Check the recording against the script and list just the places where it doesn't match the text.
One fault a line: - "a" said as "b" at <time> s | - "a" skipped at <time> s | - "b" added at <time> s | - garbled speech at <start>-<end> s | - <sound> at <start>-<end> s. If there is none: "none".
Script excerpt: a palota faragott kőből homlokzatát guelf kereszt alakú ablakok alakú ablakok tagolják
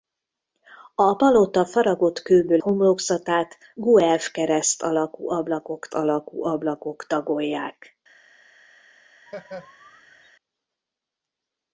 - laugh at 9.3-10.3 s